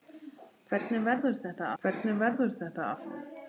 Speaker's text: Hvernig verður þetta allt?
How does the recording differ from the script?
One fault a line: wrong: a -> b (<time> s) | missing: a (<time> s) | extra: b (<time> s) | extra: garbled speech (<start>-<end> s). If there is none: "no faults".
extra: hvernig verður þetta (1.8 s)